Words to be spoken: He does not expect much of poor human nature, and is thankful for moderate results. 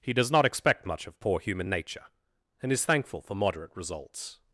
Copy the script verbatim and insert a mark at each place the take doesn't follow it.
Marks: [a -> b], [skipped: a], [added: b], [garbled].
He does not expect much of poor human nature, and is thankful for moderate results.